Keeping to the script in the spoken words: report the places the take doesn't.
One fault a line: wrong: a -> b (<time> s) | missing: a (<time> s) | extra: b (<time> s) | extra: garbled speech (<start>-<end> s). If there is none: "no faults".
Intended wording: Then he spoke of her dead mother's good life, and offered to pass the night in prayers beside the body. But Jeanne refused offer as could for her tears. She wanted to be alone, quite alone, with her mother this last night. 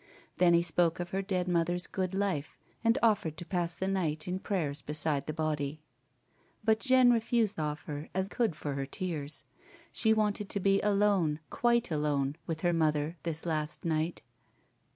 no faults